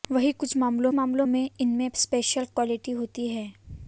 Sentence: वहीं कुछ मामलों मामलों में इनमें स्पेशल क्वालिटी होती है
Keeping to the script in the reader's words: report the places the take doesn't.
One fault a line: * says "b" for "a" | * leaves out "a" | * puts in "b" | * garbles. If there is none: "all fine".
all fine